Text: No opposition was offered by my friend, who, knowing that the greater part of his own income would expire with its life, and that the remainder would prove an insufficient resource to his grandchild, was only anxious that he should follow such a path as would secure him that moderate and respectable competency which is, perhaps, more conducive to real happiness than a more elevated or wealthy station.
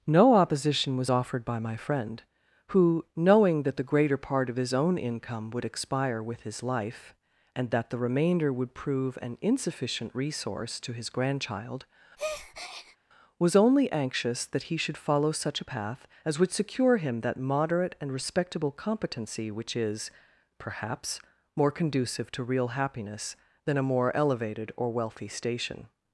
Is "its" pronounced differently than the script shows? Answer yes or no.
yes